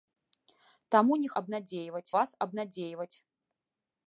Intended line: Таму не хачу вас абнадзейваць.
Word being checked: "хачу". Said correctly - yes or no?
no